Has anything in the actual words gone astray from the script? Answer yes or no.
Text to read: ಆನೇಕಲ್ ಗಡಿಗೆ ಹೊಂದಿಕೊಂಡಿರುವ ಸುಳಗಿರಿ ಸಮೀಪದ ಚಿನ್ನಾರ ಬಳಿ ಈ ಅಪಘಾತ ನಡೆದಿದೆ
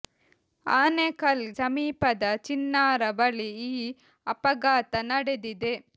yes